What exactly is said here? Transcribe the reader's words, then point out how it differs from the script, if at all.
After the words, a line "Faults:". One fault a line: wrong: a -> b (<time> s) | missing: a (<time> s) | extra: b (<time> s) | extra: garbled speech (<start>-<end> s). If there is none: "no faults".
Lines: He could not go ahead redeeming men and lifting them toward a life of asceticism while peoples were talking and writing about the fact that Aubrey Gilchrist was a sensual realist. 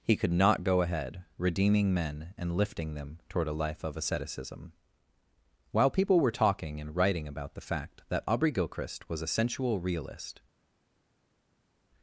He could not go ahead redeeming men and lifting them toward a life of asceticism while people were talking and writing about the fact that Aubrey Gilchrist was a sensual realist.
Faults:
wrong: peoples -> people (5.9 s)